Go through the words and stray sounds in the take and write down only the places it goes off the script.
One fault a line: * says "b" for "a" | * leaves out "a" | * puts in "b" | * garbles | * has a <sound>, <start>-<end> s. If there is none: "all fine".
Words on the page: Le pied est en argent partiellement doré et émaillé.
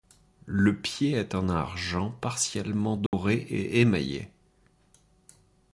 * has a dropout, 3.1-3.1 s